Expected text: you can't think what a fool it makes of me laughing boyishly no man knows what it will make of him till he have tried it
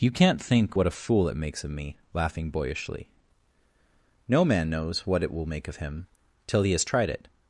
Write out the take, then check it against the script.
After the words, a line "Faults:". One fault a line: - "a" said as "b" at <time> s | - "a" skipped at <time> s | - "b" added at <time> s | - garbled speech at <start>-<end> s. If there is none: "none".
you can't think what a fool it makes of me laughing boyishly no man knows what it will make of him till he has tried it
Faults:
- "have" said as "has" at 6.7 s